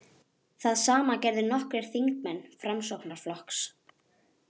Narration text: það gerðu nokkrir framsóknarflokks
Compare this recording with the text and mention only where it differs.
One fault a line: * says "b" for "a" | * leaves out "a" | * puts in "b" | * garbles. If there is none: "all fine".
* puts in "sama"
* puts in "þingmenn"